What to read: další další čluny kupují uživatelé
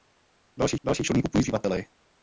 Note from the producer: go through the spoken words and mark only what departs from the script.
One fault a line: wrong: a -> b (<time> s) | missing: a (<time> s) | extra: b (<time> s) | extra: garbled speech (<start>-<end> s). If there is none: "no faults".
no faults